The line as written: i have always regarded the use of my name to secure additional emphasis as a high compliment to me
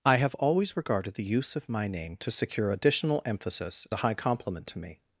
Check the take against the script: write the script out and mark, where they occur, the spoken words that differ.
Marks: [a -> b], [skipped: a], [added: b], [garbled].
i have always regarded the use of my name to secure additional emphasis [skipped: as] a high compliment to me